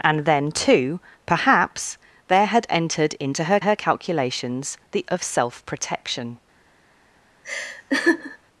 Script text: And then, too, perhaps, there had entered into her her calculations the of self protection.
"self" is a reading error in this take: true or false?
false